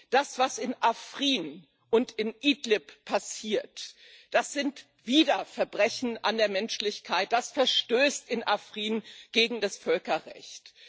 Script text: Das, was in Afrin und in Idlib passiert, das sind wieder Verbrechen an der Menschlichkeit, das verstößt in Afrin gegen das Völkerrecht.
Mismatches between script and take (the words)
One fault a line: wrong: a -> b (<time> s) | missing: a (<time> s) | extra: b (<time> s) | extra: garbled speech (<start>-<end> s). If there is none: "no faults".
no faults